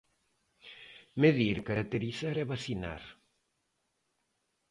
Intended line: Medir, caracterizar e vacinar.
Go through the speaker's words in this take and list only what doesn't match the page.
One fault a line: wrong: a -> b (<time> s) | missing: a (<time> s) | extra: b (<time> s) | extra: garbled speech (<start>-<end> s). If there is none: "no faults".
no faults